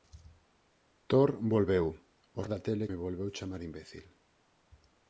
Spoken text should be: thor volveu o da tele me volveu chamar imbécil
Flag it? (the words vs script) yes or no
no